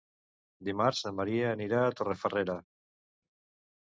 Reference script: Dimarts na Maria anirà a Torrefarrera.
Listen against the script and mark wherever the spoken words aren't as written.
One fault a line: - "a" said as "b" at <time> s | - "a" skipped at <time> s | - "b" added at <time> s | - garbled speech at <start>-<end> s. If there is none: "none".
none